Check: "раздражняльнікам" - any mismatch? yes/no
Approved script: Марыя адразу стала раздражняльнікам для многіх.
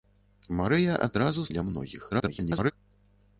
yes